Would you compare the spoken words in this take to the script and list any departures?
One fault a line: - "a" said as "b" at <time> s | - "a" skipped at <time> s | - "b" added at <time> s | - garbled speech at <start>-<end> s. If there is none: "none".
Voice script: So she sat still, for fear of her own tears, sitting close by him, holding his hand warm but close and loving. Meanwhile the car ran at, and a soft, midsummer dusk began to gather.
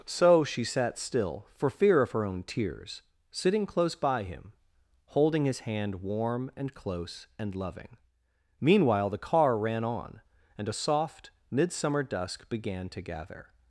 - "but" said as "and" at 6.5 s
- "at" said as "on" at 9.8 s